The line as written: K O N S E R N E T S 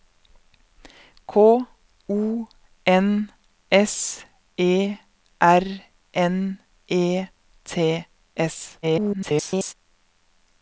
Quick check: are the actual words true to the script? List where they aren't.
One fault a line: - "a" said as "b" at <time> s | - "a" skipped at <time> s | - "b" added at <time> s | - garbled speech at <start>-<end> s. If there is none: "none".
- garbled speech at 8.8-9.7 s